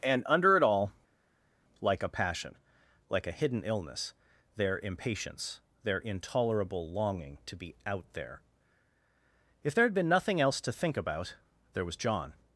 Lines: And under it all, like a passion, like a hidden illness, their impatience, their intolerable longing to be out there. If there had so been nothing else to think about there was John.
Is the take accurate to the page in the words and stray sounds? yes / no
no